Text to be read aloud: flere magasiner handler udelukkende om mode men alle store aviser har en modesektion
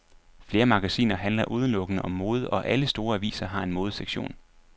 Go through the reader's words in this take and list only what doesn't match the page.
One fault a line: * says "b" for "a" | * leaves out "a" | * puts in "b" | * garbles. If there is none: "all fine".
* says "og" for "men"